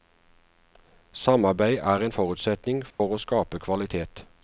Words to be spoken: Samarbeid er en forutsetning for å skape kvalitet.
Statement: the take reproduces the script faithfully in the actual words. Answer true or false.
true